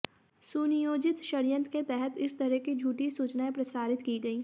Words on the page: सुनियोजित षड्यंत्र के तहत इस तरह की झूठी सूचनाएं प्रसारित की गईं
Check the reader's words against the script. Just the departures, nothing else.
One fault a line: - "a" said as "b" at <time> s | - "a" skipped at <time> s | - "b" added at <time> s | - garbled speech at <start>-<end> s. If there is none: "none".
none